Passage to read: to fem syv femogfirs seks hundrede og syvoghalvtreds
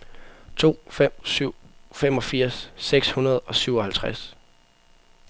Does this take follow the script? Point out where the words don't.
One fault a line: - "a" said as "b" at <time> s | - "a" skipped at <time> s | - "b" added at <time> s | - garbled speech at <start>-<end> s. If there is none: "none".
none